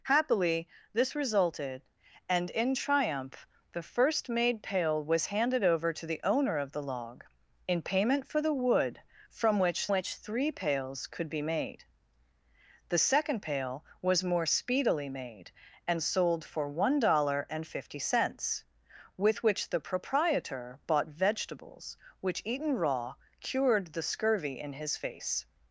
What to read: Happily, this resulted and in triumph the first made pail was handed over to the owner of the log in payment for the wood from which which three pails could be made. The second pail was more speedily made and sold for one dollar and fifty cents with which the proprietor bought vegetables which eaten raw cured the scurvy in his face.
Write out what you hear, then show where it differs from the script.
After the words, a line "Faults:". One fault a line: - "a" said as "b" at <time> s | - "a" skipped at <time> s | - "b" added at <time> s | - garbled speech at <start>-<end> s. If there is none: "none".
Happily, this resulted and in triumph the first made pail was handed over to the owner of the log in payment for the wood from which which three pails could be made. The second pail was more speedily made and sold for one dollar and fifty cents with which the proprietor bought vegetables which eaten raw cured the scurvy in his face.
Faults:
none